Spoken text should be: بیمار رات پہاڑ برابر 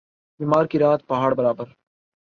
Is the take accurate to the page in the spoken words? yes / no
no